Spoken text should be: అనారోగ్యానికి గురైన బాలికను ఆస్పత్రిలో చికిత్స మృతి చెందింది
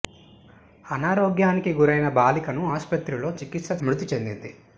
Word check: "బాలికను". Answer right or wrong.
right